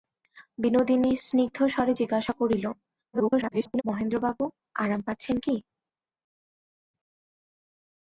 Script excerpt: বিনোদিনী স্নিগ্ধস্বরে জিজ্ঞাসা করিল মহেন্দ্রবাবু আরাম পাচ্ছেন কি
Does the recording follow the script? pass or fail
fail